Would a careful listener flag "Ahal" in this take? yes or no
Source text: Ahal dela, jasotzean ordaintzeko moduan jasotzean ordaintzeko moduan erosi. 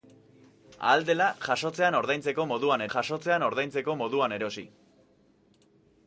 no